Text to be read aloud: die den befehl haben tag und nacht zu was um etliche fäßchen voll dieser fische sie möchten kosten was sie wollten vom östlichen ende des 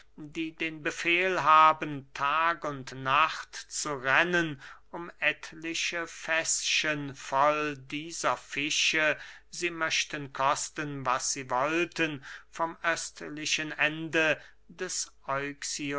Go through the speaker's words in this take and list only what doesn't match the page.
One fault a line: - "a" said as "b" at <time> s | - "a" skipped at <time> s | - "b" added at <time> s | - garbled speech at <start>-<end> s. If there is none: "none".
- "was" said as "rennen" at 3.9 s